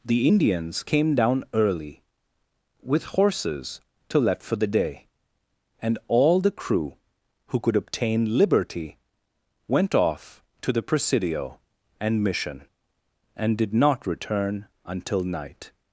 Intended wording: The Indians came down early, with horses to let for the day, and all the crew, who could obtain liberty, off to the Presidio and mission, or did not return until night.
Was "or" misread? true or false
true